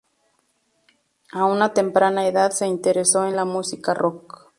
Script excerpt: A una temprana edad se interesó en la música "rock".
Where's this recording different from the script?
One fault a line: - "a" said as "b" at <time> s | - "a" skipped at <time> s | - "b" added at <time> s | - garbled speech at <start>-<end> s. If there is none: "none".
none